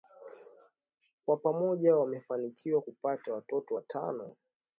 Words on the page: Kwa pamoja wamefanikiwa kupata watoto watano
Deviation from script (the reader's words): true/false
false